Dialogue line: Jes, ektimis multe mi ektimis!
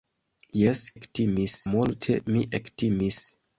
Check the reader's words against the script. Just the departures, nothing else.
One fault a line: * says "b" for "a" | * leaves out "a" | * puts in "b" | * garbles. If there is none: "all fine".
all fine